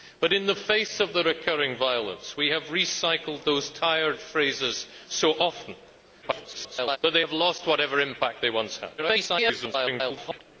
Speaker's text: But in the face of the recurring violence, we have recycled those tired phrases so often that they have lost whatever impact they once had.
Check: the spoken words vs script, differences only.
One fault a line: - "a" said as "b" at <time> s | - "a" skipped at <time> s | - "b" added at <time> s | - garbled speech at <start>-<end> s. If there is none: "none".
- garbled speech at 6.2-7.0 s
- garbled speech at 9.0-10.4 s